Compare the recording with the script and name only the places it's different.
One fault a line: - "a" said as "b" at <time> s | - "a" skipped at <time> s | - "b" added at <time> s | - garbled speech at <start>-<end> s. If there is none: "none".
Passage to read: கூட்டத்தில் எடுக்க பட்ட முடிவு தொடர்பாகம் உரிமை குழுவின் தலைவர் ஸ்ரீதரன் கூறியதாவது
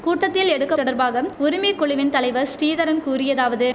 - "பட்ட முடிவு" skipped at 0.8 s